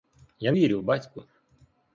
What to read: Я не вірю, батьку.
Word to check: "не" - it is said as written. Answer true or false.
false